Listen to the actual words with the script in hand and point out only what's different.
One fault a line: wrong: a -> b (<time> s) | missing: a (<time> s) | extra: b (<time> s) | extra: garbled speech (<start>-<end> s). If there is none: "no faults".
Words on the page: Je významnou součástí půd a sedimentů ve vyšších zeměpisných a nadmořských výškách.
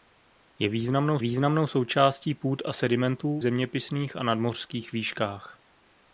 extra: významnou (1.2 s)
missing: ve vyšších (3.4 s)